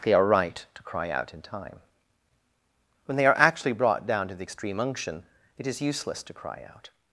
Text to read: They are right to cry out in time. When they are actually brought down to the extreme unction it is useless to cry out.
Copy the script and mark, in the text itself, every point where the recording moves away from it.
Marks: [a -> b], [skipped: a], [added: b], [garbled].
They are right to cry out in time. When they are actually brought down to the extreme unction it is useless to cry out.